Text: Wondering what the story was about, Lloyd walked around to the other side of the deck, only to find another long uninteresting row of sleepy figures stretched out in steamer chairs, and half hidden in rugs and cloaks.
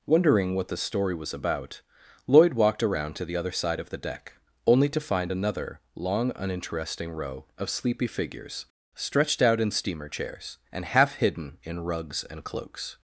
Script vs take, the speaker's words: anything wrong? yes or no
no